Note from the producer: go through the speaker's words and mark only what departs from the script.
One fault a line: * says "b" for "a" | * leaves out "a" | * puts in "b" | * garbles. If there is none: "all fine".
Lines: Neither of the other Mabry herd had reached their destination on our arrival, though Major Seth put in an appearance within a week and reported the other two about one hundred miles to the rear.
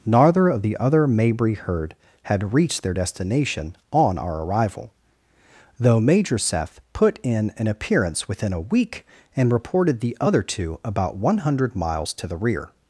all fine